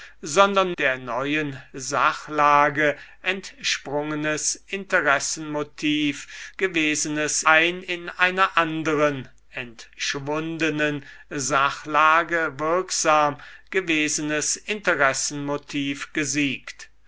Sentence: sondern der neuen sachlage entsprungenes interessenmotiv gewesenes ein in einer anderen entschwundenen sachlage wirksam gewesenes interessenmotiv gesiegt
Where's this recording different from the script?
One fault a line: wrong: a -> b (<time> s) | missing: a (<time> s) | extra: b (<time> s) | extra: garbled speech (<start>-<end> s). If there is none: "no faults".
no faults